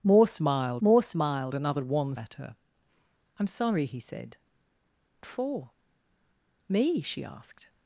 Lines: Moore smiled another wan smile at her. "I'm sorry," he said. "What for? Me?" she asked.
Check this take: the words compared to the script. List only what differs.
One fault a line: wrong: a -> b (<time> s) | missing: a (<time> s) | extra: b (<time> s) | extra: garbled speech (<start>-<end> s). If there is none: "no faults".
extra: moore smiled (0.8 s)
missing: smile (2.1 s)
missing: What (4.4 s)